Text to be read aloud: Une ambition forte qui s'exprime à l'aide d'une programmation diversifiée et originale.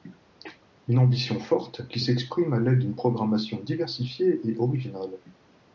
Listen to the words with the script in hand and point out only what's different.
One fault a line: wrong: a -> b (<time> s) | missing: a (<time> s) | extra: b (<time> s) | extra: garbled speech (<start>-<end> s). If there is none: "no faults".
no faults